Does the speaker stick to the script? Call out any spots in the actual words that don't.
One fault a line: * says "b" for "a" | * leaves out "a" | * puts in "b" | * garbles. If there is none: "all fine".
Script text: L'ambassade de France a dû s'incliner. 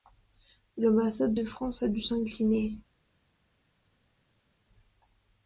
all fine